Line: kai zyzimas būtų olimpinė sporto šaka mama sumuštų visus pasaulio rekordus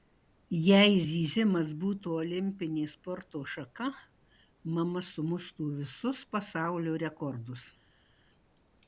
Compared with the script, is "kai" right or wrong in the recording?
wrong